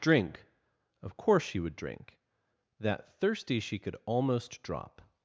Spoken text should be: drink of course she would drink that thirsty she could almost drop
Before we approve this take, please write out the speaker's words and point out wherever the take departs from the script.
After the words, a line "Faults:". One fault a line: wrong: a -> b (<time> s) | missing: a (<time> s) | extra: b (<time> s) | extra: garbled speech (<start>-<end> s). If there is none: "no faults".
drink of course she would drink that thirsty she could almost drop
Faults:
no faults